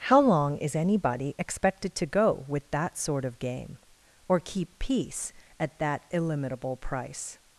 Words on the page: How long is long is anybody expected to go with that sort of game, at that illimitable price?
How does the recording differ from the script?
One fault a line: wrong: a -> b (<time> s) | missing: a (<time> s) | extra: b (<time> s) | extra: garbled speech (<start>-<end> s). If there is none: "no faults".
missing: long is (0.8 s)
extra: or keep peace (4.3 s)